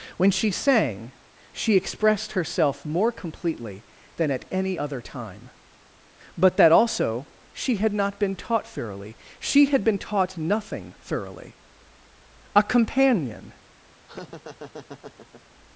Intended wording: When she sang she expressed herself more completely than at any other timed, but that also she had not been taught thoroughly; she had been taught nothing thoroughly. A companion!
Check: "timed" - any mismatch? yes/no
yes